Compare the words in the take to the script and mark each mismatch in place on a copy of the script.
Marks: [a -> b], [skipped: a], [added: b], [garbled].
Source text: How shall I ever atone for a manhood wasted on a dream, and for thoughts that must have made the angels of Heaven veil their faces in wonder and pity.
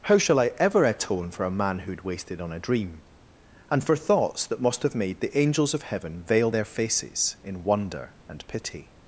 How shall I ever atone for a manhood wasted on a dream, and for thoughts that must have made the angels of Heaven veil their faces in wonder and pity.